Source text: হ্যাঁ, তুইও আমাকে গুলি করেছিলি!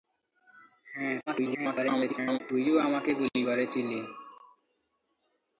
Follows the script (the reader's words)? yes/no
no